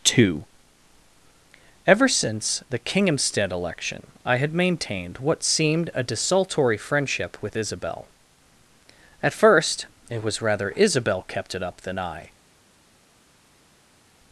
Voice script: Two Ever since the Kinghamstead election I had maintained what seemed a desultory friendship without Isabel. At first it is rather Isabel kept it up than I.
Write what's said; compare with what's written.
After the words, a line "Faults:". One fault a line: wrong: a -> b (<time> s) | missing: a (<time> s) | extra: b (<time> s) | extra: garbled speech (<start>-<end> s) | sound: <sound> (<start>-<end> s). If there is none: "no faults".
Two Ever since the Kinghamstead election I had maintained what seemed a desultory friendship with Isabel. At first it was rather Isabel kept it up than I.
Faults:
wrong: without -> with (7.4 s)
wrong: is -> was (10.2 s)